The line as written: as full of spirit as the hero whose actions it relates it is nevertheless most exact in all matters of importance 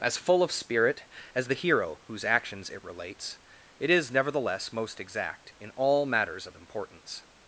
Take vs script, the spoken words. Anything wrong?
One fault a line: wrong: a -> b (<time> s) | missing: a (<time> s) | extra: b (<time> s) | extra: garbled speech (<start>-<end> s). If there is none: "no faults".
no faults